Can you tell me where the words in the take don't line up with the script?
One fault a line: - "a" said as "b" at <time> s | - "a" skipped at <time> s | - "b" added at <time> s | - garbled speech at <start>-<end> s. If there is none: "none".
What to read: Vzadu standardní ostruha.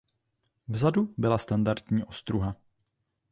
- "byla" added at 1.2 s